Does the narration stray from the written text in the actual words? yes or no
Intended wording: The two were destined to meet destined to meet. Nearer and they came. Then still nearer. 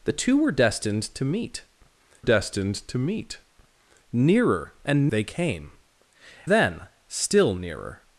no